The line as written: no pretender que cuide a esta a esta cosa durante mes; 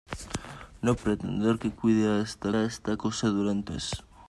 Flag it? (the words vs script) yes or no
no